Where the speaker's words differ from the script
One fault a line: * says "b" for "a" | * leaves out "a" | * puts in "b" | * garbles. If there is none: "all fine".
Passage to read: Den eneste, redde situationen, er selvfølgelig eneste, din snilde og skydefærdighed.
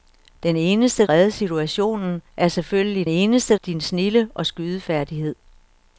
all fine